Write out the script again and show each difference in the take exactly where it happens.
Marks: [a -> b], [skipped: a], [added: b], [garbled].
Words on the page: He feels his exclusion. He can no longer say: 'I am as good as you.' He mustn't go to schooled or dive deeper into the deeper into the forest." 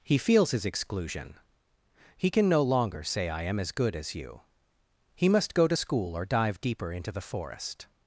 He feels his exclusion. He can no longer say: 'I am as good as you.' He [mustn't -> must] go to [schooled -> school] or dive deeper into the [skipped: deeper into the] forest."